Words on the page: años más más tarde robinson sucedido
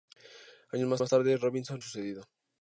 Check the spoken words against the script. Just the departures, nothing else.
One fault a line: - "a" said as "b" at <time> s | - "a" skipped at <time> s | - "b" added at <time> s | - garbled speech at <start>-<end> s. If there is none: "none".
none